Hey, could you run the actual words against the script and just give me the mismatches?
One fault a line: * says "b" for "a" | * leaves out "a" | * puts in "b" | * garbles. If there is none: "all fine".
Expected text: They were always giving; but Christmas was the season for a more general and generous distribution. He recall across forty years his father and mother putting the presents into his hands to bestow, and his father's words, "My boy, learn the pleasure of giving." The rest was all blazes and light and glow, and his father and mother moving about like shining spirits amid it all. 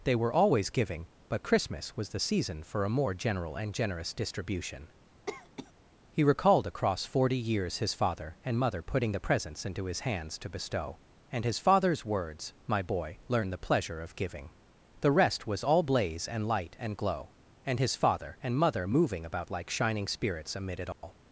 * says "recalled" for "recall"
* says "blaze" for "blazes"